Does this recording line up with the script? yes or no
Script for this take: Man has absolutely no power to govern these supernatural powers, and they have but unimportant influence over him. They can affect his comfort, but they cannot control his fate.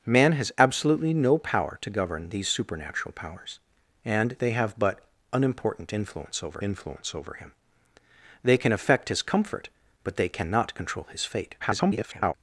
no